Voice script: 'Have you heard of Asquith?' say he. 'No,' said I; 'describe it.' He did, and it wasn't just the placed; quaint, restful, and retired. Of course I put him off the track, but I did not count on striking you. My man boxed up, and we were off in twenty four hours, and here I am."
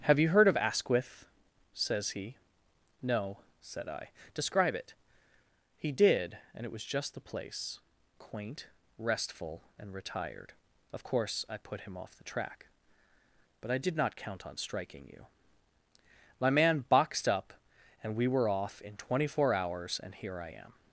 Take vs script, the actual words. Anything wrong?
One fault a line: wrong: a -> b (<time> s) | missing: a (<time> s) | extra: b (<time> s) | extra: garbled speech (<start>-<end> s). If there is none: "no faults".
wrong: say -> says (1.8 s)
wrong: wasn't -> was (6.7 s)
wrong: placed -> place (7.2 s)